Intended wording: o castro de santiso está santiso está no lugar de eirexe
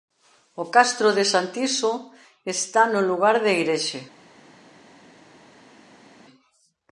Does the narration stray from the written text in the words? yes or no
yes